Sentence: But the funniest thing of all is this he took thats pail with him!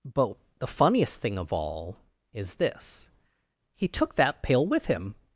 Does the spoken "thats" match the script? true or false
false